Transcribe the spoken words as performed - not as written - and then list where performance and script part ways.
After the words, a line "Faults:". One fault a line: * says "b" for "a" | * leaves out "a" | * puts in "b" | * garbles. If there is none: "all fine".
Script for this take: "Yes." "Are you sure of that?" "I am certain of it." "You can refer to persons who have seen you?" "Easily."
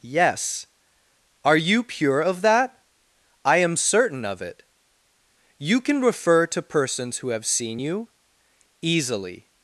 "Yes." "Are you pure of that?" "I am certain of it." "You can refer to persons who have seen you?" "Easily."
Faults:
* says "pure" for "sure"